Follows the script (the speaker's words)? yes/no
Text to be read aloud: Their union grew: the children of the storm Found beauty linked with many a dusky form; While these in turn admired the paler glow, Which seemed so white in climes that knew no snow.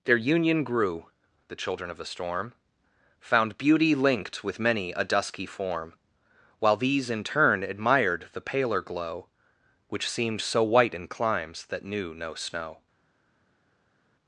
yes